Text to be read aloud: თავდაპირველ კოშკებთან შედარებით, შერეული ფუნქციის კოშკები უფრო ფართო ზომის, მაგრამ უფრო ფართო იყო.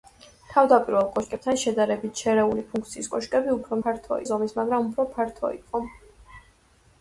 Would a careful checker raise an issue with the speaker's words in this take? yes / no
no